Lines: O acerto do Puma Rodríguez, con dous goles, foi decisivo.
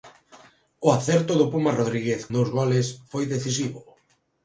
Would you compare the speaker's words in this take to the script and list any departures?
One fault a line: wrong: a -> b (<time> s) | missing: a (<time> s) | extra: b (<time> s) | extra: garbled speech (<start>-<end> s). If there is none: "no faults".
missing: con (2.2 s)